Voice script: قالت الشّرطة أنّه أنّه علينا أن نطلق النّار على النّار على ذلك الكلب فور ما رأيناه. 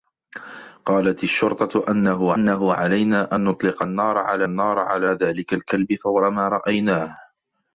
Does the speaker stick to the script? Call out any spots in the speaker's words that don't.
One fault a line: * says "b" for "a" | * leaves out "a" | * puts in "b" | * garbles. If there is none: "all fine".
all fine